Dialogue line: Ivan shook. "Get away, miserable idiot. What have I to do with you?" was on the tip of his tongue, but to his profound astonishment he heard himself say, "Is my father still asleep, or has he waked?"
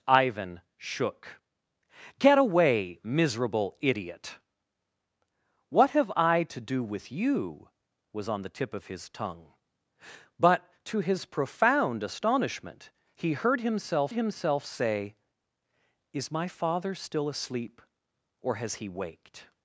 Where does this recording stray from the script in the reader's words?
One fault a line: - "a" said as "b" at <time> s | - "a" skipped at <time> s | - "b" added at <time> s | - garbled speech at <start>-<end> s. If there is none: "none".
- "himself" added at 14.1 s